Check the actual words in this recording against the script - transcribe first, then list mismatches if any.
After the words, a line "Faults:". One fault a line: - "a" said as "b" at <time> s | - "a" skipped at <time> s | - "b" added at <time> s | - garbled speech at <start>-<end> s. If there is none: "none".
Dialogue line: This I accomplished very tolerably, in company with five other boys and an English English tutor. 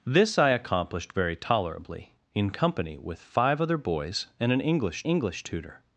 This I accomplished very tolerably, in company with five other boys and an English English tutor.
Faults:
none